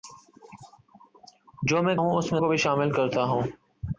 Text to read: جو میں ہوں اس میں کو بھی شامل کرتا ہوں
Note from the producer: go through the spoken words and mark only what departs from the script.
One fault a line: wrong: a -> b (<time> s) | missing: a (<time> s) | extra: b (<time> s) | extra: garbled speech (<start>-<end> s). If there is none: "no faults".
no faults